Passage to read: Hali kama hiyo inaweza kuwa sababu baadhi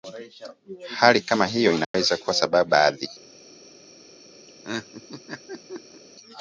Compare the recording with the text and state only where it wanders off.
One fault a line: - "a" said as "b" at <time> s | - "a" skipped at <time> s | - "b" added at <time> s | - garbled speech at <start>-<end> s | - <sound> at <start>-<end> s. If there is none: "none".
- dropout at 1.8-1.9 s
- laugh at 4.5-6.0 s